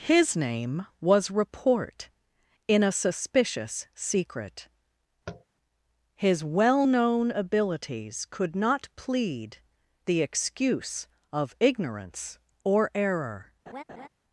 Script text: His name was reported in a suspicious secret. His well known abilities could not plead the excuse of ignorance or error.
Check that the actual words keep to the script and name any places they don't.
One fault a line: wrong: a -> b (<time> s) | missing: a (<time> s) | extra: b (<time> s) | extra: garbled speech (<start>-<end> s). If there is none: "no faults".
wrong: reported -> report (1.3 s)